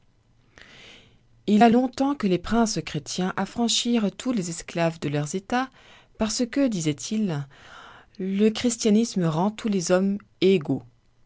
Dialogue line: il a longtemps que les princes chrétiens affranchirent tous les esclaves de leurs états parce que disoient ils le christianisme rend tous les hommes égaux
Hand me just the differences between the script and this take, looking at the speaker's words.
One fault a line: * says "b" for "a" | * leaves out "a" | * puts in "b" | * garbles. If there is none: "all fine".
all fine